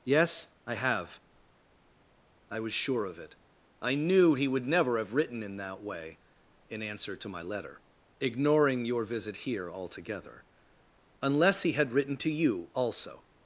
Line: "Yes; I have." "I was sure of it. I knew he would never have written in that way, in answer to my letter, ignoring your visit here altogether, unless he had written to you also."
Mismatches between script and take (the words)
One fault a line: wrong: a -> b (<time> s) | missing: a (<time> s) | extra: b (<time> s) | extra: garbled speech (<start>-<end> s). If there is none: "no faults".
no faults